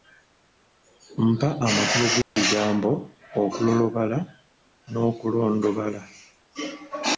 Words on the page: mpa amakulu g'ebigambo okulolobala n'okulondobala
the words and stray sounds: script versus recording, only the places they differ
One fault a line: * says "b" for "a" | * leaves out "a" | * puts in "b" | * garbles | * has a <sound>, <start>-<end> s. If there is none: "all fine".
* has a dropout, 2.2-2.4 s